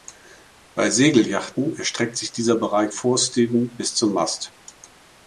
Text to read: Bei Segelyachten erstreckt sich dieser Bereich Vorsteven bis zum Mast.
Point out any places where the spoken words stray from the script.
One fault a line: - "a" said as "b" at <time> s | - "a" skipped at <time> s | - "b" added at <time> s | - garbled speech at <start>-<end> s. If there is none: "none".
none